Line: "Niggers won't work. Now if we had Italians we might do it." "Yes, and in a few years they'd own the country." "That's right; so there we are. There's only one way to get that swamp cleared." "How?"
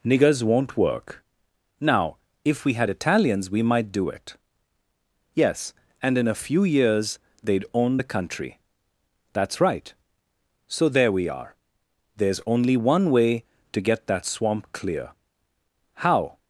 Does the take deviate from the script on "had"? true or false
false